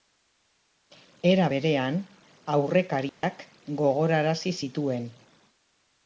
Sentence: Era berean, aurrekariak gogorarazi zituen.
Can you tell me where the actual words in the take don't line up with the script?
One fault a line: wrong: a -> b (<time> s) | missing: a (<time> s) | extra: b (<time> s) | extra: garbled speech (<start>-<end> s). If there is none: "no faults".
no faults